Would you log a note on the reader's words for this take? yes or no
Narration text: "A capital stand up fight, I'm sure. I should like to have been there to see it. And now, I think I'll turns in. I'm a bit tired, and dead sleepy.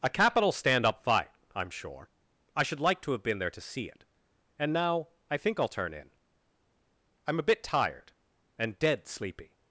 yes